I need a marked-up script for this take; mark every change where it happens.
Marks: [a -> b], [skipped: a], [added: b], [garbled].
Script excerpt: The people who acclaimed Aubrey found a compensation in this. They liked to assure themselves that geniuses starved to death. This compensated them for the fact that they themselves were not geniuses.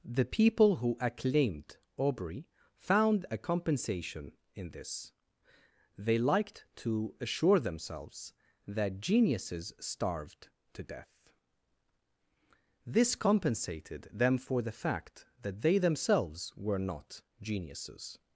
The people who acclaimed Aubrey found a compensation in this. They liked to assure themselves that geniuses starved to death. This compensated them for the fact that they themselves were not geniuses.